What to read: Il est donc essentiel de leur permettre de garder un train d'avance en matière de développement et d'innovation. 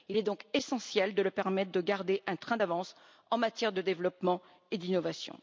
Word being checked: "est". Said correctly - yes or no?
yes